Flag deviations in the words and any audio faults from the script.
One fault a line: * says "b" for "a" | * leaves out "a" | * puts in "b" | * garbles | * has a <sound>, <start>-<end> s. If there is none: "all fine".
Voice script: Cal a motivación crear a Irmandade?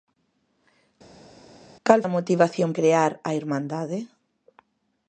all fine